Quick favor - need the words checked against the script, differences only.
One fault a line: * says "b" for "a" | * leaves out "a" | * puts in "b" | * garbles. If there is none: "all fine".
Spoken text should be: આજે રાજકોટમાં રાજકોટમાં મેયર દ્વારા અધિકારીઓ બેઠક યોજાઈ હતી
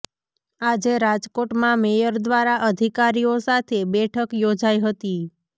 * leaves out "રાજકોટમાં"
* puts in "સાથે"